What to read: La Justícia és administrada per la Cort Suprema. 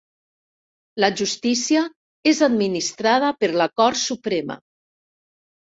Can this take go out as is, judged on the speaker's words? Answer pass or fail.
pass